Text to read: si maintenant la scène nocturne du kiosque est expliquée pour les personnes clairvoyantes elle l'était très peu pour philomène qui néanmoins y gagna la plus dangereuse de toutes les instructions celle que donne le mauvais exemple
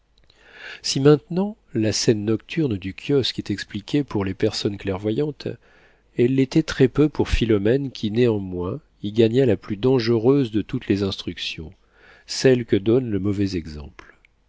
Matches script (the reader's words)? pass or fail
pass